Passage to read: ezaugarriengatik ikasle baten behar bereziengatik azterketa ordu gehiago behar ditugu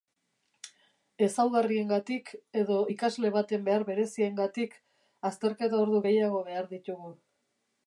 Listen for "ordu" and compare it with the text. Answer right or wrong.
right